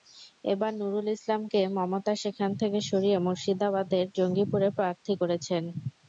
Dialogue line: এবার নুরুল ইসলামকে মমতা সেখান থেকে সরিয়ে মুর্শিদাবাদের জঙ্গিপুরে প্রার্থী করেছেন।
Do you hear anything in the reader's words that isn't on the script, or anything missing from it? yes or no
no